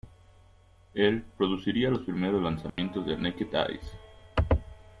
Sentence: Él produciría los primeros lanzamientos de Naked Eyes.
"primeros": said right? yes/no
yes